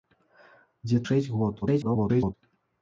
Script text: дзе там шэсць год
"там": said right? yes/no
no